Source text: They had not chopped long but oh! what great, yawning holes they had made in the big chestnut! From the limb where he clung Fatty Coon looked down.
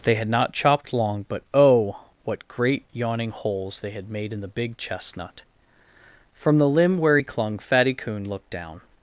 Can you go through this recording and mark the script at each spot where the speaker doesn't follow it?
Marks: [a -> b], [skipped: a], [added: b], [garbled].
They had not chopped long but oh! what great, yawning holes they had made in the big chestnut! From the limb where he clung Fatty Coon looked down.